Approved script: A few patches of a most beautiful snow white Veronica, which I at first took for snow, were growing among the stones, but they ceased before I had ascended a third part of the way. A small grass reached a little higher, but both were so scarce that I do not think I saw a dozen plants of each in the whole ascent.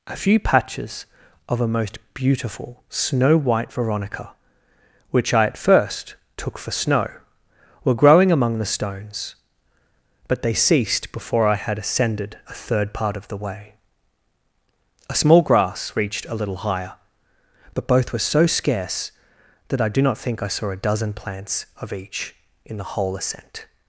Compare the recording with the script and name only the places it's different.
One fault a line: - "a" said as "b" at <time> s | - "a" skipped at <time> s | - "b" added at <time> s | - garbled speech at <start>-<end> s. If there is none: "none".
none